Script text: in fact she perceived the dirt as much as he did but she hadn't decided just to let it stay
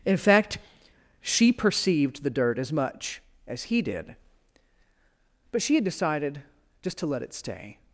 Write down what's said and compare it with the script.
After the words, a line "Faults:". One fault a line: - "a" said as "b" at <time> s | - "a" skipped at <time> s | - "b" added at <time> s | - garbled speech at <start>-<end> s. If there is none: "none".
in fact she perceived the dirt as much as he did but she had decided just to let it stay
Faults:
- "hadn't" said as "had" at 5.7 s